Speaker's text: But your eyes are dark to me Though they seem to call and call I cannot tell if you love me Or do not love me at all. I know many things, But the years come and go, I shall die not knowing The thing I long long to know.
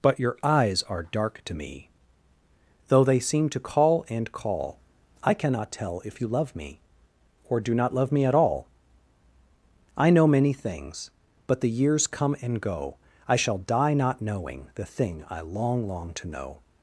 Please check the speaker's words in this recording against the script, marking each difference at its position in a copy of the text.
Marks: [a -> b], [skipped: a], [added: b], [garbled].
But your eyes are dark to me Though they seem to call and call I cannot tell if you love me Or do not love me at all. I know many things, But the years come and go, I shall die not knowing The thing I long long to know.